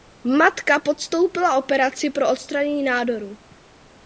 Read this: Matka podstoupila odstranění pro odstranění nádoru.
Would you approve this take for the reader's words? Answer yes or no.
no